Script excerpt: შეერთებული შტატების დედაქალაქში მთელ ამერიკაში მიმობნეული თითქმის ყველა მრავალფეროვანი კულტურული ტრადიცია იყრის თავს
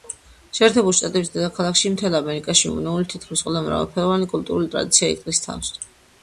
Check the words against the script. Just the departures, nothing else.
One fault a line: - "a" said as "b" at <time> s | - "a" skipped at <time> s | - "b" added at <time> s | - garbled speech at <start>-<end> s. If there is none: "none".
none